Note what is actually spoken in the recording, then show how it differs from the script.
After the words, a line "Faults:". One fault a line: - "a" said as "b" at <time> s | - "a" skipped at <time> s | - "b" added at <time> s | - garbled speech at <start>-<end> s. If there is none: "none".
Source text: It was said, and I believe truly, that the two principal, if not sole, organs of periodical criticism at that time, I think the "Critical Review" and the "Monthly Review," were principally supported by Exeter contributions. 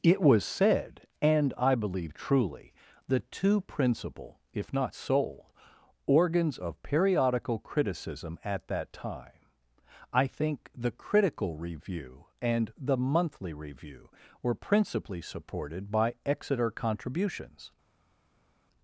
It was said, and I believe truly, the two principal, if not sole, organs of periodical criticism at that time, I think the "Critical Review" and the "Monthly Review," were principally supported by Exeter contributions.
Faults:
- "that" skipped at 2.7 s